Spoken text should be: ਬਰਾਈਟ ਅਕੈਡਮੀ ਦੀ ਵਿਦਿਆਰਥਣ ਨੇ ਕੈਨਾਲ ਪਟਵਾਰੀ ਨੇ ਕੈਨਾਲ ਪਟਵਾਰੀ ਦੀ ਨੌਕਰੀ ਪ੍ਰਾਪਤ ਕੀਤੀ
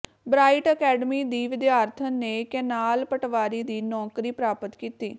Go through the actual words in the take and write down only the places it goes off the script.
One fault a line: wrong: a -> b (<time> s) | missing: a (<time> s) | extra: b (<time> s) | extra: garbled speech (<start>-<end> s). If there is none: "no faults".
missing: ਨੇ ਕੈਨਾਲ ਪਟਵਾਰੀ (3.6 s)